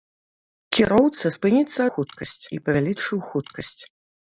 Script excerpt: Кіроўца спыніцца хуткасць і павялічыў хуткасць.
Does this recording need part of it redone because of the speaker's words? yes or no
no